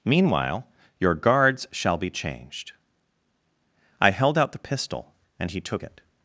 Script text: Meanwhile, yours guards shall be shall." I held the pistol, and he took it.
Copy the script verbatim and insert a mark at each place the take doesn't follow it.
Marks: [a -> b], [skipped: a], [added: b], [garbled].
Meanwhile, [yours -> your] guards shall be [shall." -> changed] I held [added: out] the pistol, and he took it.